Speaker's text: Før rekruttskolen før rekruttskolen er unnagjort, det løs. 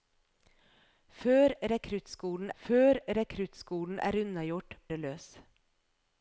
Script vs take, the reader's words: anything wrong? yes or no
no